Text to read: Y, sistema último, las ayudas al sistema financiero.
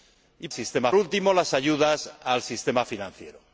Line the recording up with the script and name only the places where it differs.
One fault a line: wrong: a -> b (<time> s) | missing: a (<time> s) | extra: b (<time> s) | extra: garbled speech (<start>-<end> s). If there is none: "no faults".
no faults